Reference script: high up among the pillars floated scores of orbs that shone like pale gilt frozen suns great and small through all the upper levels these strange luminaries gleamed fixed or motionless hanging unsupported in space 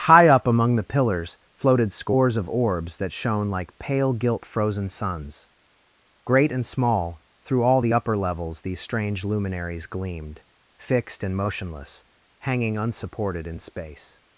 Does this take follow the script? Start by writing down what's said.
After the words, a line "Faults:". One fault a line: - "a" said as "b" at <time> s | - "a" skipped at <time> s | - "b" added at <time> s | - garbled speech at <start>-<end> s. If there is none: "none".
high up among the pillars floated scores of orbs that shone like pale gilt frozen suns great and small through all the upper levels these strange luminaries gleamed fixed and motionless hanging unsupported in space
Faults:
- "or" said as "and" at 11.2 s